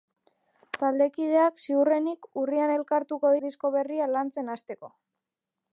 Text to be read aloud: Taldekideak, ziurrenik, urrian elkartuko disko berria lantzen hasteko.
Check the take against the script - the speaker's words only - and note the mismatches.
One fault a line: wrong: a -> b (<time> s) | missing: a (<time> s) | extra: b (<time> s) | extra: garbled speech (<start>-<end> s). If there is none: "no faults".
no faults